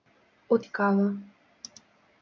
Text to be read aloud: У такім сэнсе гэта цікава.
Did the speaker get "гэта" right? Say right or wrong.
wrong